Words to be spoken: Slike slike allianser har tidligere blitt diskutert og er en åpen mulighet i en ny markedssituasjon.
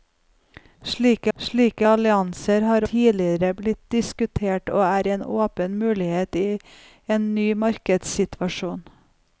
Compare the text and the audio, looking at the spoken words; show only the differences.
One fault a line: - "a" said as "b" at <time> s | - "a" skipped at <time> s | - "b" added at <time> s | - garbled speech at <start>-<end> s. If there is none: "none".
none